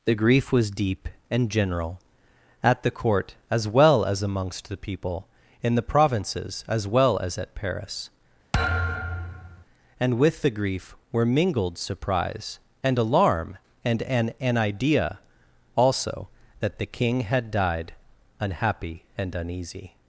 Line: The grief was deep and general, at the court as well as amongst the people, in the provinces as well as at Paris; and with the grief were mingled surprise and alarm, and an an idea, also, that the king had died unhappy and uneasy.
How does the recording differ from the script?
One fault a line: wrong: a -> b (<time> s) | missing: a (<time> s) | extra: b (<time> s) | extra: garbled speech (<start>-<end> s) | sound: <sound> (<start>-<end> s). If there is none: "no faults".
sound: thud (8.5-9.6 s)